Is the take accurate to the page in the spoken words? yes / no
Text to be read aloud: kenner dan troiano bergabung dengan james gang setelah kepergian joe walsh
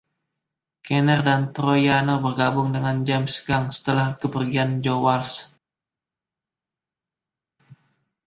yes